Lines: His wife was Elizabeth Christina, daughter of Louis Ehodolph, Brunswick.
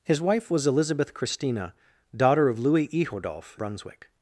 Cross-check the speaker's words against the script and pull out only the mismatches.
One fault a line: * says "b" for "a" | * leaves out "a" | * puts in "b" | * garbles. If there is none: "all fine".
all fine